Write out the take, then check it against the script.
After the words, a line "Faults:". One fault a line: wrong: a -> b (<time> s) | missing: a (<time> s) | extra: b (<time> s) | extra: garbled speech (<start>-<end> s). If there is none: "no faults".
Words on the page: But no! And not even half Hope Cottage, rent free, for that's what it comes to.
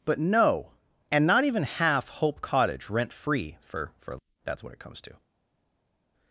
But no! And not even half Hope Cottage, rent free, for for that's what it comes to.
Faults:
extra: for (4.0 s)